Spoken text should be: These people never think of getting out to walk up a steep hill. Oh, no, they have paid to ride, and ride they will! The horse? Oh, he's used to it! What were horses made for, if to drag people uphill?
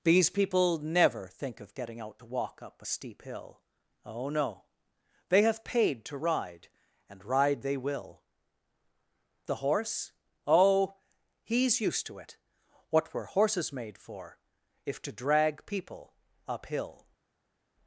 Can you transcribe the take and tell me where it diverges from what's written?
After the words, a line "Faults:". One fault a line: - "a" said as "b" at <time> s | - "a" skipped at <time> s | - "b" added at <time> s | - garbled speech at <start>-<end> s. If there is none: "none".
These people never think of getting out to walk up a steep hill. Oh, no, they have paid to ride, and ride they will! The horse? Oh, he's used to it! What were horses made for, if to drag people uphill?
Faults:
none